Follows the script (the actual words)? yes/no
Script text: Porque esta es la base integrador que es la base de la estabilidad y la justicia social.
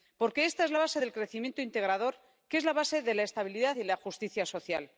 no